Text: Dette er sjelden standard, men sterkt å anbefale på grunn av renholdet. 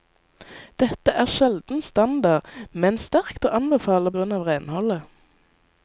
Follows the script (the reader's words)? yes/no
no